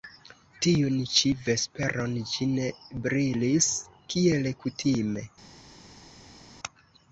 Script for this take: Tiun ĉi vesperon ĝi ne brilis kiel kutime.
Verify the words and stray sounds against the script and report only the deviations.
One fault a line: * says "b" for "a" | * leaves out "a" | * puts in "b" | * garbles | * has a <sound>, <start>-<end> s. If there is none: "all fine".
all fine